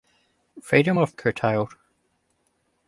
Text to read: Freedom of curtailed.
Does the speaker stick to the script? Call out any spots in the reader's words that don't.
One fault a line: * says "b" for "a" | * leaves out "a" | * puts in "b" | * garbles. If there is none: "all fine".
all fine